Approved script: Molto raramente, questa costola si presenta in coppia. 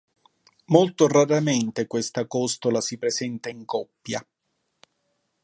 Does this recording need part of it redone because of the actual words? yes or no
no